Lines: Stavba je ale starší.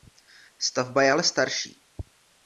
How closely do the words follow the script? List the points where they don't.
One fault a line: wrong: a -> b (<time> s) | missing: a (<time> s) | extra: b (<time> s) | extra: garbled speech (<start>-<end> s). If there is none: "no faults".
no faults